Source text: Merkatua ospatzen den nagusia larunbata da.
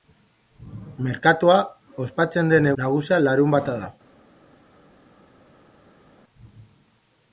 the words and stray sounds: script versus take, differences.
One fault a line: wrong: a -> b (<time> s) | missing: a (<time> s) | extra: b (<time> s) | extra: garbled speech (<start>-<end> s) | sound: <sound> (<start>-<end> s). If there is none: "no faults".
no faults